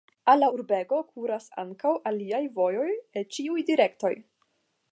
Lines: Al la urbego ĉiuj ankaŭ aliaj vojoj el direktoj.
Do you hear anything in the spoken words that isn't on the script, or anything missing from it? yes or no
yes